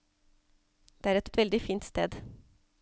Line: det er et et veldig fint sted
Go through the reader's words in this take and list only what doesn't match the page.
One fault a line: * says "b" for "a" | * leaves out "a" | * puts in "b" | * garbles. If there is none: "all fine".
all fine